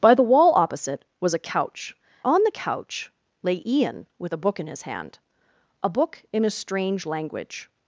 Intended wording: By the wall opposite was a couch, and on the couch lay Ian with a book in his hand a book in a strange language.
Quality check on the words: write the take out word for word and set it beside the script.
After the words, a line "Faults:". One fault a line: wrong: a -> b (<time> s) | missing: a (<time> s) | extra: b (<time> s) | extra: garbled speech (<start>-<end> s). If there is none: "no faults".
By the wall opposite was a couch, on the couch lay Ian with a book in his hand a book in a strange language.
Faults:
missing: and (1.9 s)